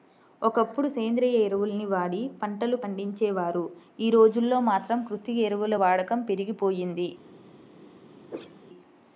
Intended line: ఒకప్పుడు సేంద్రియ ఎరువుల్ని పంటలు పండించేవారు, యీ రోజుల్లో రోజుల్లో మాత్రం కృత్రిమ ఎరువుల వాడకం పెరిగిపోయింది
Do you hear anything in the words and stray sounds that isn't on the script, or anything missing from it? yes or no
yes